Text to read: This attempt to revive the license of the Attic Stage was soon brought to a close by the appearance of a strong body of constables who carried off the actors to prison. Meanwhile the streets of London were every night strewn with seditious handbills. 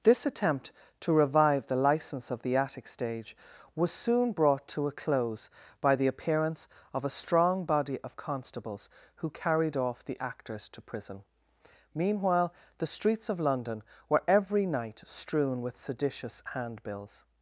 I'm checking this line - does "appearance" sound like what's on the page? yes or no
yes